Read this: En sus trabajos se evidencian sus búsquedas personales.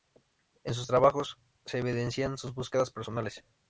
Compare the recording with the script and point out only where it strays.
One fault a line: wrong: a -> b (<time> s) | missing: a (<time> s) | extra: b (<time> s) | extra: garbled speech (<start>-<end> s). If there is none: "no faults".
no faults